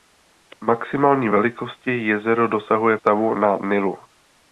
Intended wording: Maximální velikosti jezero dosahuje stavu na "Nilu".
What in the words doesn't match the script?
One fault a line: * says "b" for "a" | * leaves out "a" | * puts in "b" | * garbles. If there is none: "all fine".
all fine